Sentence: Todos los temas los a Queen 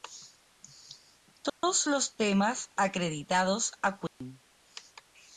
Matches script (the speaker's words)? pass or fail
fail